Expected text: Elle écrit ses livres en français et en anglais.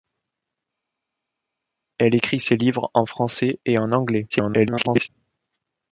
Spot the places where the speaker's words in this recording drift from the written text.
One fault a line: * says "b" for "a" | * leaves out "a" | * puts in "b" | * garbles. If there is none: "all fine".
* garbles